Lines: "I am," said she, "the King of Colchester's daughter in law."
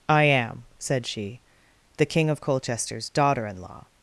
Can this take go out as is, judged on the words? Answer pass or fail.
pass